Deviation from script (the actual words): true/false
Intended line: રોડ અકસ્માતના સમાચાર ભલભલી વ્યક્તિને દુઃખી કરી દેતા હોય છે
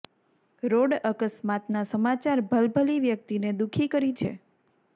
true